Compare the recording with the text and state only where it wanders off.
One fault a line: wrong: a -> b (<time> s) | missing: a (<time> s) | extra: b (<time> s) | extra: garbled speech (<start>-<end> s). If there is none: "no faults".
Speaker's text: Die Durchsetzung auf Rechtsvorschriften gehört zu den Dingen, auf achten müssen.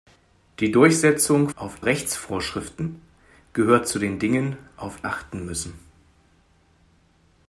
no faults